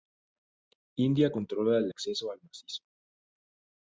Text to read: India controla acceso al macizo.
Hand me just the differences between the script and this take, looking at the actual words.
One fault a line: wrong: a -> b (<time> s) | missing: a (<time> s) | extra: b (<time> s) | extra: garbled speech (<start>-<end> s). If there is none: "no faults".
extra: el (1.8 s)